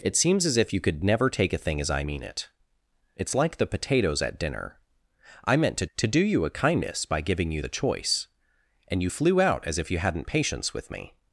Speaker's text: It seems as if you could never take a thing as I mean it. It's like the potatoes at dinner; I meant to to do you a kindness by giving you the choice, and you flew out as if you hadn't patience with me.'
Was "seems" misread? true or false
false